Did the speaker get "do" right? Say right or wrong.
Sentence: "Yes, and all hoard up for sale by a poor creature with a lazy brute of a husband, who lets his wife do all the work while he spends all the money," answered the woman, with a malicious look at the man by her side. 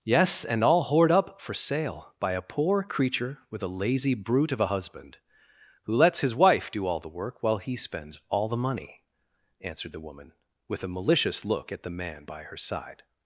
right